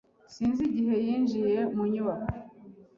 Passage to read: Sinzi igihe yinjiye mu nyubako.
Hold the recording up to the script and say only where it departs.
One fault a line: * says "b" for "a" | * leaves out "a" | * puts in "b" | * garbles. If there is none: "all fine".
all fine